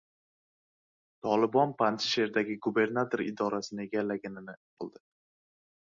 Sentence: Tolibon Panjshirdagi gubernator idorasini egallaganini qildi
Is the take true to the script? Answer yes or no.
yes